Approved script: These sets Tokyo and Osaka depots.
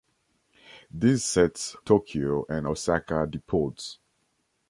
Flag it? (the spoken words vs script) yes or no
no